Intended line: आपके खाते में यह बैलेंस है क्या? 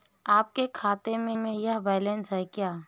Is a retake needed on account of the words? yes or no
yes